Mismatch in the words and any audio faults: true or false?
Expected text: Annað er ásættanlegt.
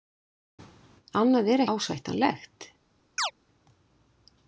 true